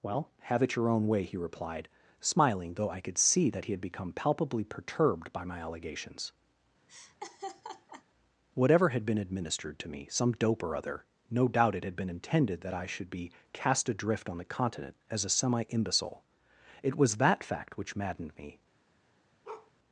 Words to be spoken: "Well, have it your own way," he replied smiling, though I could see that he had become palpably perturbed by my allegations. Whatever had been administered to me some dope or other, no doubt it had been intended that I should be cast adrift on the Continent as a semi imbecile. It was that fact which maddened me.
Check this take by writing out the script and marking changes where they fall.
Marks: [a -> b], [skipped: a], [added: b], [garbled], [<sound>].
"Well, have it your own way," he replied smiling, though I could see that he had become palpably perturbed by my allegations. [laugh] Whatever had been administered to me some dope or other, no doubt it had been intended that I should be cast adrift on the Continent as a semi imbecile. It was that fact which maddened me. [bark]